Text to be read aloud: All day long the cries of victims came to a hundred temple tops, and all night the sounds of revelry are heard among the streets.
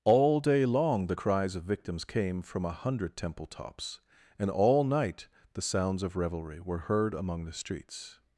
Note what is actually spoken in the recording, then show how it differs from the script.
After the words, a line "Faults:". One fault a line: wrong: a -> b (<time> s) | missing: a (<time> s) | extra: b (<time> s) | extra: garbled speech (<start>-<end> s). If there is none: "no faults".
All day long the cries of victims came from a hundred temple tops, and all night the sounds of revelry were heard among the streets.
Faults:
wrong: to -> from (2.4 s)
wrong: are -> were (6.6 s)